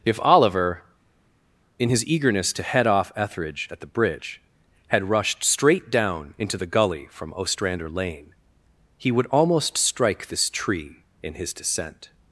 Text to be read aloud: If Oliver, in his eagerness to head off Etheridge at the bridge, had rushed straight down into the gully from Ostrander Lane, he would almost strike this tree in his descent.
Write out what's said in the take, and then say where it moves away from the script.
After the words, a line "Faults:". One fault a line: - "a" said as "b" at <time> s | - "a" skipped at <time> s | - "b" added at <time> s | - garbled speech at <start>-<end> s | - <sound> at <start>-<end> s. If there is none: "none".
If Oliver, in his eagerness to head off Etheridge at the bridge, had rushed straight down into the gully from Ostrander Lane, he would almost strike this tree in his descent.
Faults:
none